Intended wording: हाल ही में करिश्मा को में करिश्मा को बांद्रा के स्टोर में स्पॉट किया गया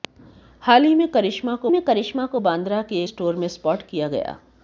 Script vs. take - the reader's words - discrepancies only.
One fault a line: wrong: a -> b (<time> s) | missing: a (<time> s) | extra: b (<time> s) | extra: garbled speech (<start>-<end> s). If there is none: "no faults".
no faults